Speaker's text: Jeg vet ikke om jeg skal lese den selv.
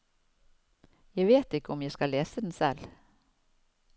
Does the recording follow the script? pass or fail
pass